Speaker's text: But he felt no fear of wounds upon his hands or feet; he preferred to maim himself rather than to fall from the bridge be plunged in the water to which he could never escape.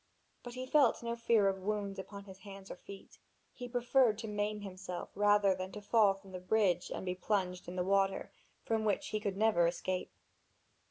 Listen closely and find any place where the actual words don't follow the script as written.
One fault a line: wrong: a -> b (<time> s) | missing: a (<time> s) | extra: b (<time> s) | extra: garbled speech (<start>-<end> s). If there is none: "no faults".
extra: and (6.9 s)
wrong: to -> from (8.6 s)